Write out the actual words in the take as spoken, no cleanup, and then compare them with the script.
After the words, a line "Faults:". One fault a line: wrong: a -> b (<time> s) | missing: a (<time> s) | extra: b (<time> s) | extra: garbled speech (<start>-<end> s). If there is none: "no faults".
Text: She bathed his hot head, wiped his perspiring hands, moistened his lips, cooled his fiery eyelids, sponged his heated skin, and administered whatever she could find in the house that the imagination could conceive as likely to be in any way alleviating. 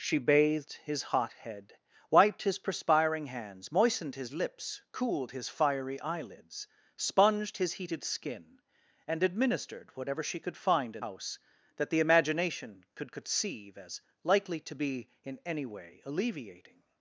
She bathed his hot head, wiped his perspiring hands, moistened his lips, cooled his fiery eyelids, sponged his heated skin, and administered whatever she could find in house that the imagination could conceive as likely to be in any way alleviating.
Faults:
missing: the (11.1 s)